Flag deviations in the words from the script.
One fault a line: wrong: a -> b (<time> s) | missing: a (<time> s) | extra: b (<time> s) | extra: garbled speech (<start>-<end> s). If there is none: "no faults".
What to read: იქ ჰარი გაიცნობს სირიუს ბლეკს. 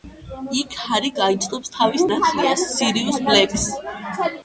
extra: თავის ნათლიას (1.8 s)